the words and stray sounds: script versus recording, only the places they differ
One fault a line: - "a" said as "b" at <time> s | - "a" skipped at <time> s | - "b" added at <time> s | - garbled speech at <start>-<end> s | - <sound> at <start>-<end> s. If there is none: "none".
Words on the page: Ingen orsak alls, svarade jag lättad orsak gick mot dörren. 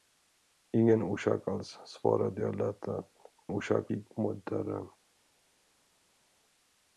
none